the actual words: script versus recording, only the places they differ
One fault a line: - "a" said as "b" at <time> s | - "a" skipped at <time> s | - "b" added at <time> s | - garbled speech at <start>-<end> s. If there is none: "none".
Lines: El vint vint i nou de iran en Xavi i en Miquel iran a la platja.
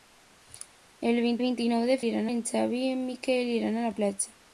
none